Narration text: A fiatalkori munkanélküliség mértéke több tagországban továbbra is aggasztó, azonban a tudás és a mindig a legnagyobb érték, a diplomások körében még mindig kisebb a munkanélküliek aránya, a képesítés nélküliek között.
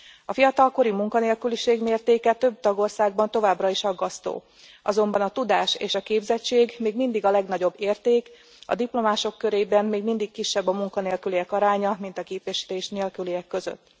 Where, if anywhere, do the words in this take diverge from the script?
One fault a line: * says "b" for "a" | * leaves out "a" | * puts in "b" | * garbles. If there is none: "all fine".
* puts in "képzettség még"
* puts in "mint"